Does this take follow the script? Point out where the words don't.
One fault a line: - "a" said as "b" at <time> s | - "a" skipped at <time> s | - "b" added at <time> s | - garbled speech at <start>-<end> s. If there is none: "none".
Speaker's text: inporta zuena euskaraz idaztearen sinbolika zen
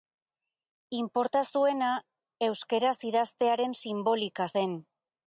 none